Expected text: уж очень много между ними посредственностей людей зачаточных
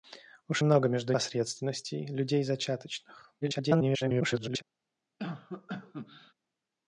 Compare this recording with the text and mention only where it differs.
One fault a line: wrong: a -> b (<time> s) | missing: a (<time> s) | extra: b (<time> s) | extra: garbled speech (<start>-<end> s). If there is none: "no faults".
missing: очень (0.6 s)
missing: ними (1.1 s)
extra: garbled speech (3.4-4.6 s)